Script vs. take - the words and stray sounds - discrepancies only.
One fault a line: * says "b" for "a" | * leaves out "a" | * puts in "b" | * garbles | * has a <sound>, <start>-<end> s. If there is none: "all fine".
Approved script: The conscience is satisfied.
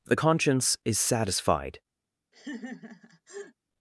* has a laugh, 2.3-3.5 s